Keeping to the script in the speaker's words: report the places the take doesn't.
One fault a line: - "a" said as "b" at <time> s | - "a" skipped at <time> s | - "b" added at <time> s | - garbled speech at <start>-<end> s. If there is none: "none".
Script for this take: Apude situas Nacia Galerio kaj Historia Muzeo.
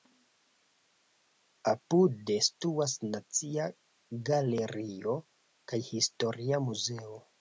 none